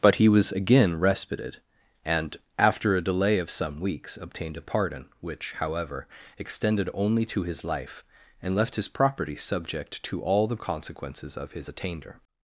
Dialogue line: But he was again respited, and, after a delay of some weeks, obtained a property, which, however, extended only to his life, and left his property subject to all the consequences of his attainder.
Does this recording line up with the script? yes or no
no